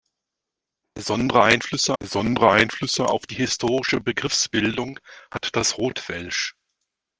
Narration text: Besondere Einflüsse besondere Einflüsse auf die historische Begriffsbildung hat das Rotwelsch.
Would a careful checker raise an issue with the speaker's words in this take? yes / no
no